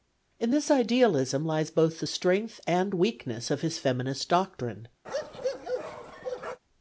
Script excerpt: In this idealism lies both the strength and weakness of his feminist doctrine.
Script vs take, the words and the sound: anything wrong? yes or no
yes